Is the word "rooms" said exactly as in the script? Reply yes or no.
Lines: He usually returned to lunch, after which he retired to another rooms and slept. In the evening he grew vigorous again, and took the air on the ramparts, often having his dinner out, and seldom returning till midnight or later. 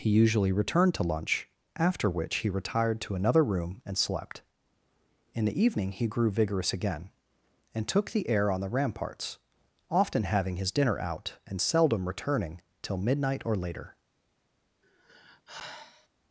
no